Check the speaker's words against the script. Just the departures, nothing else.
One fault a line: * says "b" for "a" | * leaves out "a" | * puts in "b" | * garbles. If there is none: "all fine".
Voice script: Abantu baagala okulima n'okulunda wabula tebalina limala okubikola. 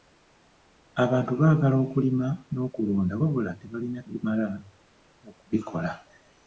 all fine